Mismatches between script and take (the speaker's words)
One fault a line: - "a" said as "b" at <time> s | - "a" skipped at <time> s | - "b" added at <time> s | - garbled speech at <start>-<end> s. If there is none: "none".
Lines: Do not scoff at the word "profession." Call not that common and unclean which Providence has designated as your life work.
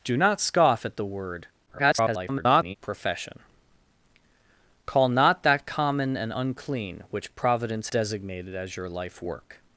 - garbled speech at 1.7-2.8 s
- "has" skipped at 7.9 s